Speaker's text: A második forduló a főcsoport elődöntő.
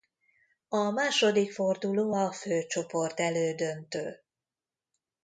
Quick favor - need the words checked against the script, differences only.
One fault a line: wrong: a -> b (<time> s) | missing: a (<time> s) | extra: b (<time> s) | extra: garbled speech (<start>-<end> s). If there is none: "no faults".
no faults